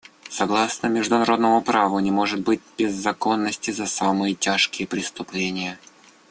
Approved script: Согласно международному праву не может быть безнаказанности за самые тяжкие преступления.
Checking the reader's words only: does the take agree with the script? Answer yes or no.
yes